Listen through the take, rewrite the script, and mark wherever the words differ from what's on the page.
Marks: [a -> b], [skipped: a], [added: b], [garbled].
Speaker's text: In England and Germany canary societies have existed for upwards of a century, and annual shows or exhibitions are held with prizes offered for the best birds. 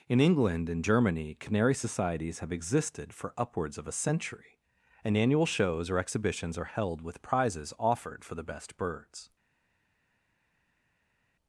In England and Germany canary societies have existed for upwards of a century, and annual shows or exhibitions are held with prizes offered for the best birds.